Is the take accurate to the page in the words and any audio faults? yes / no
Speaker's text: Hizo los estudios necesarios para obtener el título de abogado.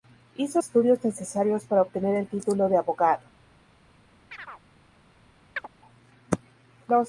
no